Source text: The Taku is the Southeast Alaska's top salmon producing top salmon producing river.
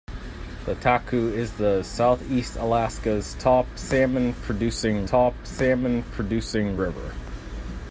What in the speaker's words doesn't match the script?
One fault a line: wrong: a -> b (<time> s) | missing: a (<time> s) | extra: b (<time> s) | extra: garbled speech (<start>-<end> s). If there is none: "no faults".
no faults